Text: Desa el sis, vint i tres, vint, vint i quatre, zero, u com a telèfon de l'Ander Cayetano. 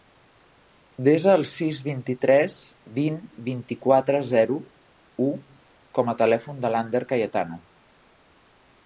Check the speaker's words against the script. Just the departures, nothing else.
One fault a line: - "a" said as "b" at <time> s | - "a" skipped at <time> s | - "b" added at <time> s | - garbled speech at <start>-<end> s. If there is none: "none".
none